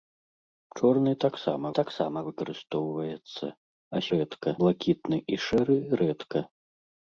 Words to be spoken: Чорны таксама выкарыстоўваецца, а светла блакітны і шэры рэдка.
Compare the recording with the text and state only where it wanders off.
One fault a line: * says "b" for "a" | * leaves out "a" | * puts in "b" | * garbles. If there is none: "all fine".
* puts in "таксама"
* says "рэдка" for "светла"